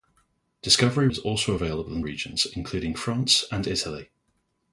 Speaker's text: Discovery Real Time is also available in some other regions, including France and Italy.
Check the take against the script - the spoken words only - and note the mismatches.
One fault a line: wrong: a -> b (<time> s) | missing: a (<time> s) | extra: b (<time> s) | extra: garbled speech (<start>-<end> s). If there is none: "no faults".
missing: Real Time (1.1 s)
missing: some other (2.0 s)